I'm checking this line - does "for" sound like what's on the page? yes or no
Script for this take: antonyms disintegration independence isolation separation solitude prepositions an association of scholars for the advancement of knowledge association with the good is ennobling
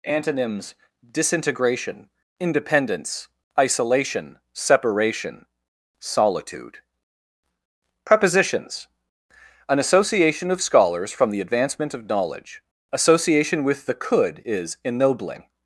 no